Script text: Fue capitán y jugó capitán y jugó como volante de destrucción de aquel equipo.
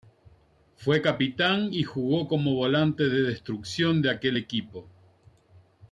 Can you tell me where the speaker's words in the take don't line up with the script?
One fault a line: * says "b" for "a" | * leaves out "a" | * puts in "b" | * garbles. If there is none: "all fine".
* leaves out "capitán y jugó"